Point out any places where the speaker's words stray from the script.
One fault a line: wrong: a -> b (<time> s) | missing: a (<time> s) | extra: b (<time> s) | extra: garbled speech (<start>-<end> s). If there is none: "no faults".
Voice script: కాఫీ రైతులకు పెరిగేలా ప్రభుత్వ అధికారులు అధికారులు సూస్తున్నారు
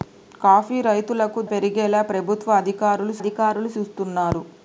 no faults